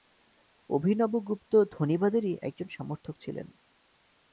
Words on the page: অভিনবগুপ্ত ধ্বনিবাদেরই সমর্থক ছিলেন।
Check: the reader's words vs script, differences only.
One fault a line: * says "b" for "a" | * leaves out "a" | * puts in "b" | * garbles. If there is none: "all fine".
* puts in "একজন"